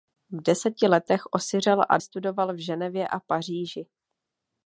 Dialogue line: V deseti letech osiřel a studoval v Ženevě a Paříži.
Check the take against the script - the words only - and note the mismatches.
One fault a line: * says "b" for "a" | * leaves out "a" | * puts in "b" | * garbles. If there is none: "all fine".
all fine